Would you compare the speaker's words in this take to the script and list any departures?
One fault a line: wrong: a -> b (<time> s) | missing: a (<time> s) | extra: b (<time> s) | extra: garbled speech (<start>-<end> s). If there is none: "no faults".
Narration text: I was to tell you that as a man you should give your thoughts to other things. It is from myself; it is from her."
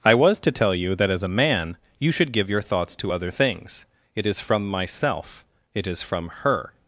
no faults